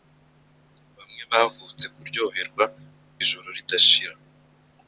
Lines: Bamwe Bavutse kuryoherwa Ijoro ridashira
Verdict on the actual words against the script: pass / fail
pass